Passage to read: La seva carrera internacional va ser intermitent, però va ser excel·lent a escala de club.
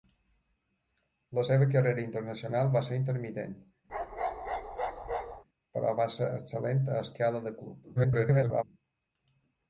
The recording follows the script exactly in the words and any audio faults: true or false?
false